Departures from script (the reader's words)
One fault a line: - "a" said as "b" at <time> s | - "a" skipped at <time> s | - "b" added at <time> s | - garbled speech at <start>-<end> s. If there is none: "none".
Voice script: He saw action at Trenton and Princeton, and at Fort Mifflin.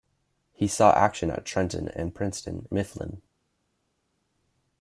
- "and at Fort" skipped at 2.7 s